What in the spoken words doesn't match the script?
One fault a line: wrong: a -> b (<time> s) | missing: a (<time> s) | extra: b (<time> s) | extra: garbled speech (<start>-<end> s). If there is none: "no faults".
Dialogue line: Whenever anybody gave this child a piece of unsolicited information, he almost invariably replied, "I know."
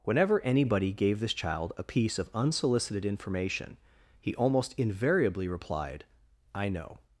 no faults